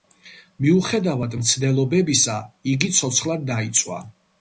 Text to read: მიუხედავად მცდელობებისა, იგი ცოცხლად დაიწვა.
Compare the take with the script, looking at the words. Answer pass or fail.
pass